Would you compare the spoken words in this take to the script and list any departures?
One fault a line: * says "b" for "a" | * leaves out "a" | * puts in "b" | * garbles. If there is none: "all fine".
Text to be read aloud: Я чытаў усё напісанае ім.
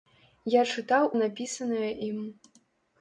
* leaves out "усё"